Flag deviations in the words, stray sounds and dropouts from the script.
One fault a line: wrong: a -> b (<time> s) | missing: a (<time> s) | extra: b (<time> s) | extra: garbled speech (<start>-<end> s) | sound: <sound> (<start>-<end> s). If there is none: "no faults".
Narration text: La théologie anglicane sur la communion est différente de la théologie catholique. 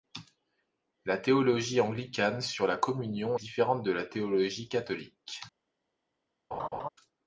missing: est (3.4 s)
sound: laugh (6.5-6.9 s)